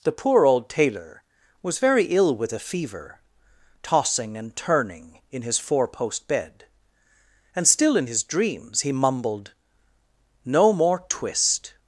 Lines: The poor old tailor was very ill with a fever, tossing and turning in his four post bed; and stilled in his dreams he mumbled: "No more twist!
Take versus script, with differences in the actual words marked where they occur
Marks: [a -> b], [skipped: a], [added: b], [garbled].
The poor old tailor was very ill with a fever, tossing and turning in his four post bed; and [stilled -> still] in his dreams he mumbled: "No more twist!